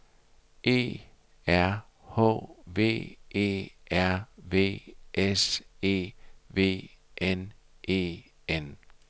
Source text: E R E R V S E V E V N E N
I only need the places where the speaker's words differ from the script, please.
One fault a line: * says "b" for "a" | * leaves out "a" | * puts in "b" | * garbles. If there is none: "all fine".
* puts in "H V"
* leaves out "E V"